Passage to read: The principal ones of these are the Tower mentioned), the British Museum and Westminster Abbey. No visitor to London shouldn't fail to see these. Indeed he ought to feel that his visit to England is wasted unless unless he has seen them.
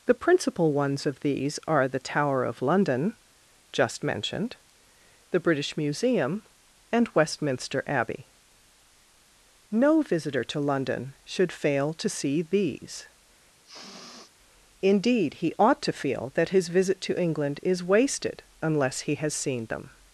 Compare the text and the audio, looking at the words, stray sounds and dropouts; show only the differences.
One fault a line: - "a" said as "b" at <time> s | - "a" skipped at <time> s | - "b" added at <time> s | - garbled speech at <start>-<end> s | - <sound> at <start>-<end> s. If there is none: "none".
- "of London just" added at 2.4 s
- "shouldn't" said as "should" at 11.2 s
- sniff at 13.6-14.3 s
- "unless" skipped at 19.0 s